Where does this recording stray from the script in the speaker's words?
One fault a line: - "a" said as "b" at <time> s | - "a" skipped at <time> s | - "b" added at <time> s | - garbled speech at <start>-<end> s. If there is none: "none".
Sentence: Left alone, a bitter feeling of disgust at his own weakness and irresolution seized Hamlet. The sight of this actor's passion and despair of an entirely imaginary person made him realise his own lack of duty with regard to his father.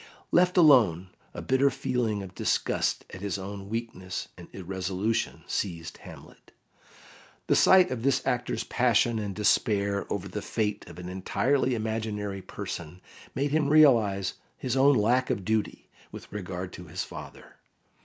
- "over the fate" added at 10.1 s